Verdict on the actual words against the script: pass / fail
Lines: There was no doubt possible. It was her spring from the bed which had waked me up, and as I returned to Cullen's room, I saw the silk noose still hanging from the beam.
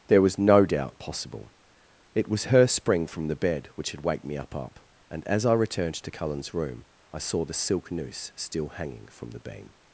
fail